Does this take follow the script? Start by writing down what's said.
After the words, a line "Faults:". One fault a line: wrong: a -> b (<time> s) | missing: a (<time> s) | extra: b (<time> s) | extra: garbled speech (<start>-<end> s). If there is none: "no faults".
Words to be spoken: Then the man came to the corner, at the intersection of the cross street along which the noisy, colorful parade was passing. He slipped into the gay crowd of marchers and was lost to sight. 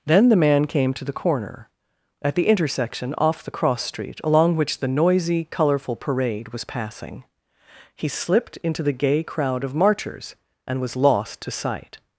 Then the man came to the corner, at the intersection off the cross street along which the noisy, colorful parade was passing. He slipped into the gay crowd of marchers and was lost to sight.
Faults:
wrong: of -> off (3.2 s)